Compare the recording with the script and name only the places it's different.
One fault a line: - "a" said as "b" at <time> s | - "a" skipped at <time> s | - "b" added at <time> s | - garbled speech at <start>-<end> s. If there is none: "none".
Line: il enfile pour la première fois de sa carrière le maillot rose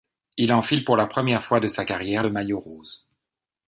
none